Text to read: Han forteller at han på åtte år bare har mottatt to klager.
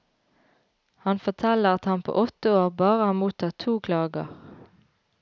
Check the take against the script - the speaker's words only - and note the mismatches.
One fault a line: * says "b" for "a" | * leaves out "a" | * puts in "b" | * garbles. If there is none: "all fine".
all fine